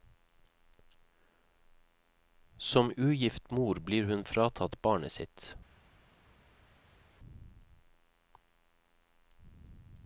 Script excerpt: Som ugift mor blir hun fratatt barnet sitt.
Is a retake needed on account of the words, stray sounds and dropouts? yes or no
no